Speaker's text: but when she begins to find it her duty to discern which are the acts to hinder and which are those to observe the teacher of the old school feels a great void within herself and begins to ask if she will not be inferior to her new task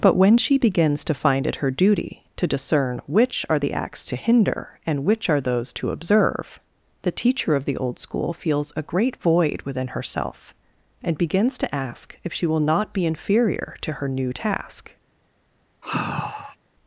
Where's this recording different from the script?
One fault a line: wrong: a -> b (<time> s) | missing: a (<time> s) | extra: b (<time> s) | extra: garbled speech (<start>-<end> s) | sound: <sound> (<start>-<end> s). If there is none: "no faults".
sound: sigh (15.8-16.6 s)